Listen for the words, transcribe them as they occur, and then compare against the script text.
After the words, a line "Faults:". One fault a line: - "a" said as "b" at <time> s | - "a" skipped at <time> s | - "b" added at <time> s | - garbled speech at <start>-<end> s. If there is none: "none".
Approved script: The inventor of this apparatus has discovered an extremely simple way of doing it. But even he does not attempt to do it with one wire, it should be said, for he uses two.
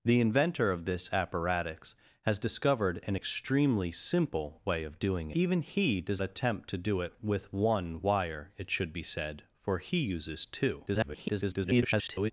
The inventor of this apparatus has discovered an extremely simple way of doing even he does attempt to do it with one wire, it should be said, for he uses two. [garbled]
Faults:
- "it But" skipped at 5.3 s
- "not" skipped at 6.2 s
- garbled speech at 10.9-12.3 s